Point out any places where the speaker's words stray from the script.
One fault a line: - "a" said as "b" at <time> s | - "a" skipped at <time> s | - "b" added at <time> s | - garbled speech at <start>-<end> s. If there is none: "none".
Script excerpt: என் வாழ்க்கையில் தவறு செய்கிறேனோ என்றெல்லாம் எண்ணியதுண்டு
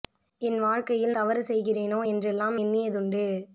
none